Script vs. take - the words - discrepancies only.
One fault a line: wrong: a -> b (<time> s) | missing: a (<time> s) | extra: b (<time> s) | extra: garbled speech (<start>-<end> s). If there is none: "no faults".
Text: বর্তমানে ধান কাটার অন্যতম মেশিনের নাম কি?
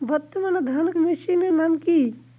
missing: কাটার অন্যতম (0.9 s)